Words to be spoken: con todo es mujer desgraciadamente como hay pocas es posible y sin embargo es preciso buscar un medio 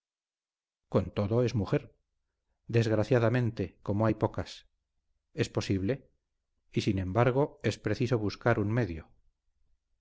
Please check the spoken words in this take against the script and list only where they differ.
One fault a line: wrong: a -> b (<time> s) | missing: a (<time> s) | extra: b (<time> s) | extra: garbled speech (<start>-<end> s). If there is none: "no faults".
no faults